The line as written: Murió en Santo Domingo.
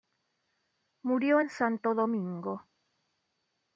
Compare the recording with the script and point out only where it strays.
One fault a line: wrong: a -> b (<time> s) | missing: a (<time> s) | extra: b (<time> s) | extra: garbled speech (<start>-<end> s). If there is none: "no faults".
no faults